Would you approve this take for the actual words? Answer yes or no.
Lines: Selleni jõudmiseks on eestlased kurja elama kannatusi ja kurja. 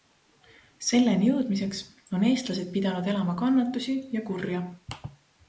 no